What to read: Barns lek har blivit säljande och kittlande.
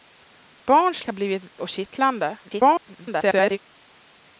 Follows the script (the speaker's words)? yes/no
no